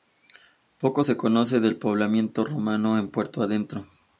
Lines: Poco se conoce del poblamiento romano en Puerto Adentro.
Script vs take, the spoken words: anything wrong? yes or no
no